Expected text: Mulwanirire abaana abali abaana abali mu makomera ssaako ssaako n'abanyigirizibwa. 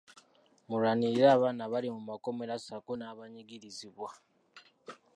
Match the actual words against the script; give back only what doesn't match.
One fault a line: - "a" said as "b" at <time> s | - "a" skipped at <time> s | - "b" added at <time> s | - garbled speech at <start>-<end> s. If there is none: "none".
- "abaana abali" skipped at 1.9 s
- "ssaako" skipped at 2.9 s